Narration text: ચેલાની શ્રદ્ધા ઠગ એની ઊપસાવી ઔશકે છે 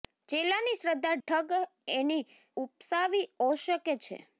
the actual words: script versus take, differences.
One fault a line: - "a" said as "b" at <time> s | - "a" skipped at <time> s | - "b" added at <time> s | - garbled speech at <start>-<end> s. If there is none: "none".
none